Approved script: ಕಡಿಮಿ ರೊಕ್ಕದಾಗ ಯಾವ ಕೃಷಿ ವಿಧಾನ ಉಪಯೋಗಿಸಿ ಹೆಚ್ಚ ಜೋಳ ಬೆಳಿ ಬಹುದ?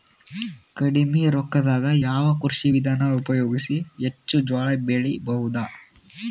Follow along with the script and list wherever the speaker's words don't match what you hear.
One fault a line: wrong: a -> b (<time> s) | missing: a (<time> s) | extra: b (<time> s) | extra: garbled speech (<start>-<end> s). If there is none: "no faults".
no faults